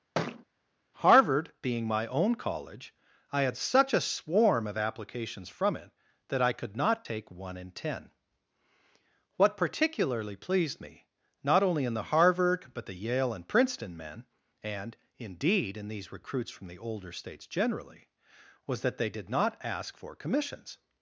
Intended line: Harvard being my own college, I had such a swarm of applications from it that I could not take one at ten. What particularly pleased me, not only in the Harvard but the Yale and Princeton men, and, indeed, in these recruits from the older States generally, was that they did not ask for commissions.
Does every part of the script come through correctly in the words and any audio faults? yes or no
no